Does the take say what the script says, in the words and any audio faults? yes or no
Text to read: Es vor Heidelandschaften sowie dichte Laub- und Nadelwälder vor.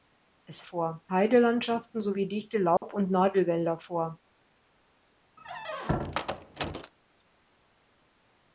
no